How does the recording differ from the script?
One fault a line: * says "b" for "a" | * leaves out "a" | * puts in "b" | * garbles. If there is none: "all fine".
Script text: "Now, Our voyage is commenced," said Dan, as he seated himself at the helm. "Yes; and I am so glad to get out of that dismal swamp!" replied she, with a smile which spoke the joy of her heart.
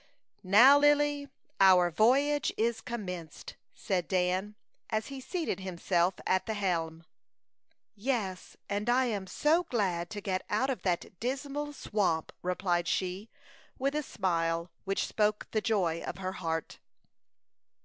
* puts in "Lily"